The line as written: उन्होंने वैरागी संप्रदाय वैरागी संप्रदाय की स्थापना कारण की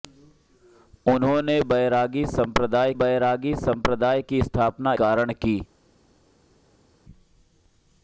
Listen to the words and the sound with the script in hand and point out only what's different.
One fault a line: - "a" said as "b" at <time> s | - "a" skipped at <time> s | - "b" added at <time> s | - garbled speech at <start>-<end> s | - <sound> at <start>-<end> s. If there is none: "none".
none